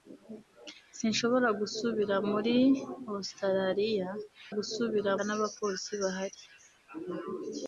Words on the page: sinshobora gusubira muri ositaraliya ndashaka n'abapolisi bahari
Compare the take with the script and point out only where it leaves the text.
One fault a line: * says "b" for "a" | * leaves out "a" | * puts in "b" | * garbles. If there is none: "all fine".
* says "gusubira" for "ndashaka"